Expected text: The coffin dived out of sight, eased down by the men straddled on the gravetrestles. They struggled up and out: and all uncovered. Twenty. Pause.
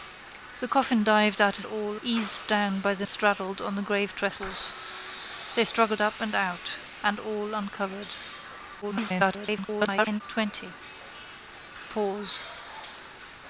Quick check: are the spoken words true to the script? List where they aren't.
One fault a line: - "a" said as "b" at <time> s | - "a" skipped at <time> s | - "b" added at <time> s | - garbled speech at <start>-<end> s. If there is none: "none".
- "sight" said as "all" at 1.6 s
- "men" skipped at 3.1 s
- garbled speech at 8.8-10.2 s